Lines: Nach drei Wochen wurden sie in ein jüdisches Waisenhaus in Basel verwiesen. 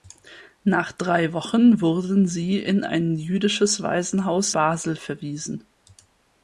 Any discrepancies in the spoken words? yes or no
yes